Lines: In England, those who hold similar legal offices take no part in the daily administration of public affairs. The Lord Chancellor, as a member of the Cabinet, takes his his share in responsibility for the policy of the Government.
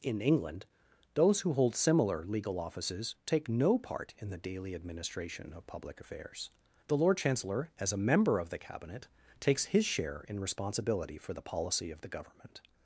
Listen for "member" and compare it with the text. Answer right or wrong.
right